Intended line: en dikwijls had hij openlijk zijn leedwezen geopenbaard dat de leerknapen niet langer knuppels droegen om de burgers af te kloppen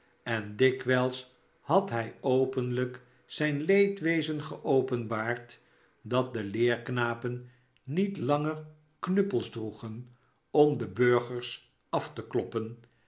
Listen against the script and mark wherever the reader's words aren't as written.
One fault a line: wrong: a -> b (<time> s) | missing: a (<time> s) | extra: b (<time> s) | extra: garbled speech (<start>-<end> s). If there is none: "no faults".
no faults